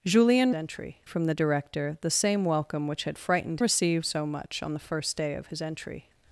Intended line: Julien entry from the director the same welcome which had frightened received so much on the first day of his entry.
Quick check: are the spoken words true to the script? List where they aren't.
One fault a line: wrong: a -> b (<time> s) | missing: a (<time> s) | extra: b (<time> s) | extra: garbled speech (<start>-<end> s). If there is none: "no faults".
no faults